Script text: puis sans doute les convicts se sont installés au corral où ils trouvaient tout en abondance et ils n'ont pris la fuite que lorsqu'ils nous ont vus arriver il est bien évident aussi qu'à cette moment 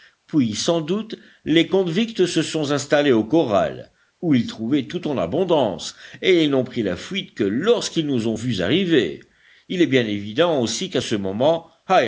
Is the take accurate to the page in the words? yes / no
no